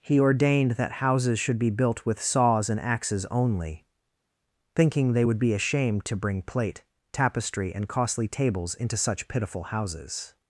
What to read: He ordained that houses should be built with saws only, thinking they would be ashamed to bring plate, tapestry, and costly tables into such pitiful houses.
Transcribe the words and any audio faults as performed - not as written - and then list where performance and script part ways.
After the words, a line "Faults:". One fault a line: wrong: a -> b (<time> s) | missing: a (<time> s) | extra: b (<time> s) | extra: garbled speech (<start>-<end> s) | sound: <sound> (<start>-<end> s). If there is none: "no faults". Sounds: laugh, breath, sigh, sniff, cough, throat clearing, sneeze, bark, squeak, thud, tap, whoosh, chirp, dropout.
He ordained that houses should be built with saws and axes only, thinking they would be ashamed to bring plate, tapestry, and costly tables into such pitiful houses.
Faults:
extra: and axes (2.7 s)